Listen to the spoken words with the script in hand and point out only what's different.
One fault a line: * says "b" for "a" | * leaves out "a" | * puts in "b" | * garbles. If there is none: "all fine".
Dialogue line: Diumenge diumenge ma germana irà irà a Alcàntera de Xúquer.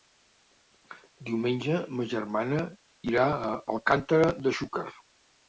* leaves out "diumenge"
* leaves out "irà"